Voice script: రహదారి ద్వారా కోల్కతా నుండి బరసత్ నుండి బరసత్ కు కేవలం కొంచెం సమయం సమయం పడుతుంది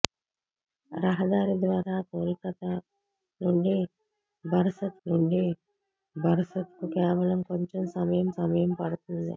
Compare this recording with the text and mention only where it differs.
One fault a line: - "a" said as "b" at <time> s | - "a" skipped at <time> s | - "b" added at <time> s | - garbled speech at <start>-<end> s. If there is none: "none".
none